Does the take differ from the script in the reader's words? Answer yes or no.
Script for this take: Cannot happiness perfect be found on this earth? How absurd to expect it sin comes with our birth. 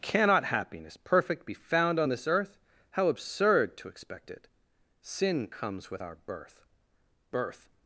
yes